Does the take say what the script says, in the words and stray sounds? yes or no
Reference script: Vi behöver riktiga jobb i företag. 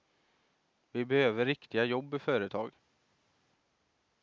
yes